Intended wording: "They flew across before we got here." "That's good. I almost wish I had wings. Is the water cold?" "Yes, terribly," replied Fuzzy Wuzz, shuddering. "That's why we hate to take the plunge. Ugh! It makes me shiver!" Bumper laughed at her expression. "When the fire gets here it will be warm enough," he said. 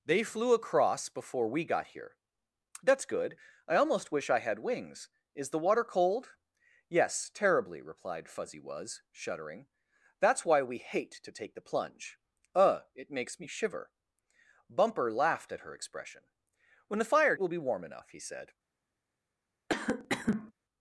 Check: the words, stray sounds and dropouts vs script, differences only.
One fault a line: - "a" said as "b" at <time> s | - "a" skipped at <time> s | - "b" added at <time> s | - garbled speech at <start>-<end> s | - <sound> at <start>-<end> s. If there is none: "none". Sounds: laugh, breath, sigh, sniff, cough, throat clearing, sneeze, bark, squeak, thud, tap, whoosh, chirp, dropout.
- "gets here it" skipped at 17.4 s
- cough at 19.7-20.5 s